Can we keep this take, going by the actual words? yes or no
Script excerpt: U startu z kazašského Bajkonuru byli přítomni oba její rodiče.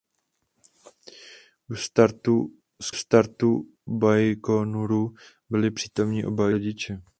no